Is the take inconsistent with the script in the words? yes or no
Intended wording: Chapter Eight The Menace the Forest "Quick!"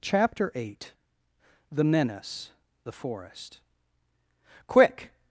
no